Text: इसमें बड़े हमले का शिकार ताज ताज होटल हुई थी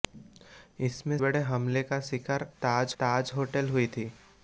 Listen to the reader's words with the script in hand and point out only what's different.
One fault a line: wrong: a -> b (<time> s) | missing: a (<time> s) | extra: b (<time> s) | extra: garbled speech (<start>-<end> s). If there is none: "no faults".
no faults